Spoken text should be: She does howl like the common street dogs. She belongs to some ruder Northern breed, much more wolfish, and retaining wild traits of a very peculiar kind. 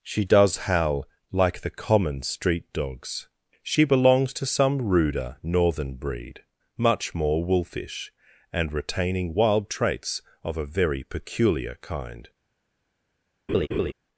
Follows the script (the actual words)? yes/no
yes